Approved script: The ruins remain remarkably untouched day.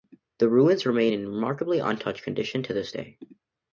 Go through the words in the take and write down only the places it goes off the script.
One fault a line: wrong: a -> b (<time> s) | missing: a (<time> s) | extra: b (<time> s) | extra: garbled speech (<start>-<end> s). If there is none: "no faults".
extra: in (1.1 s)
extra: condition to this (2.2 s)